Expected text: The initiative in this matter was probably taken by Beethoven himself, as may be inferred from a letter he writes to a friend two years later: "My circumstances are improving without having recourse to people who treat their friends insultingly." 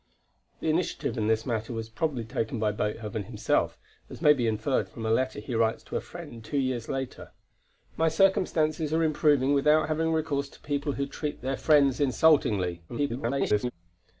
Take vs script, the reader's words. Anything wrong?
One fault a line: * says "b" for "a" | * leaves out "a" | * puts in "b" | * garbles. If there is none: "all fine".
* garbles